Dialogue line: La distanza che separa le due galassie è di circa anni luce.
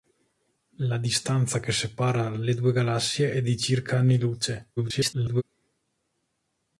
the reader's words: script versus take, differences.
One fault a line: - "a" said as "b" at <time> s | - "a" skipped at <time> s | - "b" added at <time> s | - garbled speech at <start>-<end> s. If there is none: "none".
- garbled speech at 4.8-5.4 s